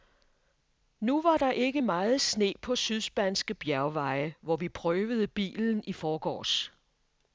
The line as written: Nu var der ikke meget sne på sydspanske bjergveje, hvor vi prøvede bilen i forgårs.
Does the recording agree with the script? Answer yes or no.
yes